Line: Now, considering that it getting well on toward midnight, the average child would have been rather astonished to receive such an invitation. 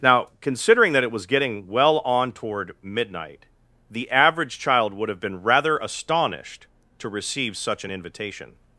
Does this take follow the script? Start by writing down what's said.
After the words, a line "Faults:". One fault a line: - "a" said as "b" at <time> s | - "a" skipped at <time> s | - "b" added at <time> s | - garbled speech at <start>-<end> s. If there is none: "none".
Now, considering that it was getting well on toward midnight, the average child would have been rather astonished to receive such an invitation.
Faults:
- "was" added at 1.1 s